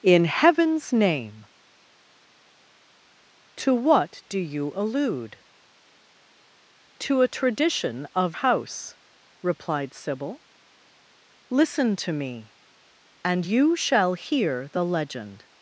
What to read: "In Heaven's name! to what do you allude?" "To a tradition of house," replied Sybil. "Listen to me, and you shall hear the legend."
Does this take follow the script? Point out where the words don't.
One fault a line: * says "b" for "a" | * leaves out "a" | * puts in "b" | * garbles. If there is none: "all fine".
all fine